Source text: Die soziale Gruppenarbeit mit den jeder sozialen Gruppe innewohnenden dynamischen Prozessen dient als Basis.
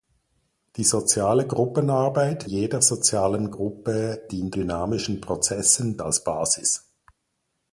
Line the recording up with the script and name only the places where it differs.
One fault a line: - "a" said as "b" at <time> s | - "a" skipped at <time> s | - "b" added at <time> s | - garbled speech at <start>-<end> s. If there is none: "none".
- "mit den" skipped at 2.5 s
- "innewohnenden" said as "dient" at 4.3 s
- "dient" skipped at 6.0 s